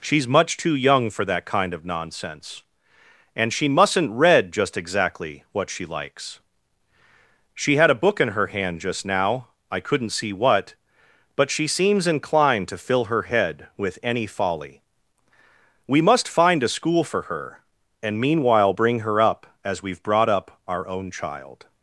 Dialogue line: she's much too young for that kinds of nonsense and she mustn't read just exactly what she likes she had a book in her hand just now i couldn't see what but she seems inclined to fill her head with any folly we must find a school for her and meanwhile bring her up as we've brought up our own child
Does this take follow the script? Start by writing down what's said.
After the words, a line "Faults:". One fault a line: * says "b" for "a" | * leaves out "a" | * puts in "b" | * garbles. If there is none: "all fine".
she's much too young for that kind of nonsense and she mustn't read just exactly what she likes she had a book in her hand just now i couldn't see what but she seems inclined to fill her head with any folly we must find a school for her and meanwhile bring her up as we've brought up our own child
Faults:
* says "kind" for "kinds"